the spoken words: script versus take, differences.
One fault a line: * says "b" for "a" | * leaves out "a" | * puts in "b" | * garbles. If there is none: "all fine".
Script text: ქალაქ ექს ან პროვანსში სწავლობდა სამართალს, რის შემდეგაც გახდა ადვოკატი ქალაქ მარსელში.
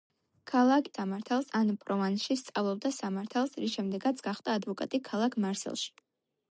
* says "სამართალს" for "ექს"